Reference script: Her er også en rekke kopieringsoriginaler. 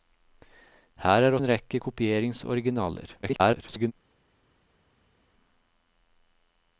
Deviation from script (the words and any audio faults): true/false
true